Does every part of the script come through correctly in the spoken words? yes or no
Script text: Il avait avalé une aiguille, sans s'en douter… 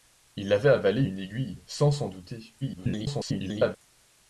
no